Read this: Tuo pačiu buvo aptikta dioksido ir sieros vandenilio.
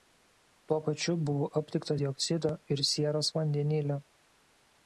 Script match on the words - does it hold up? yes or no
yes